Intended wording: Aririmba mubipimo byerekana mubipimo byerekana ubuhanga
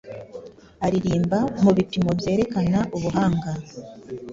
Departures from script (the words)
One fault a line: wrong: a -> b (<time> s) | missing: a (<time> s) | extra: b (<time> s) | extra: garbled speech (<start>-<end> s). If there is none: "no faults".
missing: mubipimo byerekana (2.8 s)